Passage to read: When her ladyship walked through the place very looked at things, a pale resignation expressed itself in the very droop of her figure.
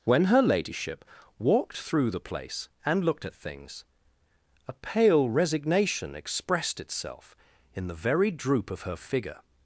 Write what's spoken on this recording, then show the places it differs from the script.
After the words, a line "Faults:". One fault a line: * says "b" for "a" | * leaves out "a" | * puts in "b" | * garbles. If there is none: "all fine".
When her ladyship walked through the place and looked at things, a pale resignation expressed itself in the very droop of her figure.
Faults:
* says "and" for "very"